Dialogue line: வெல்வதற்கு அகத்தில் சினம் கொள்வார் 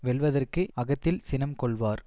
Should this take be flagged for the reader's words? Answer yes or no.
no